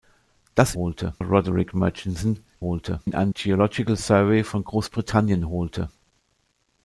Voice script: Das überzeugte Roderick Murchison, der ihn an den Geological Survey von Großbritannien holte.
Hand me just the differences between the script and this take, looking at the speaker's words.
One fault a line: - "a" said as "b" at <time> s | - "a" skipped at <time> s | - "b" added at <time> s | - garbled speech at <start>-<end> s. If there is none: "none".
- "überzeugte" said as "holte" at 0.7 s
- "der" said as "holte" at 2.6 s
- "den" skipped at 3.3 s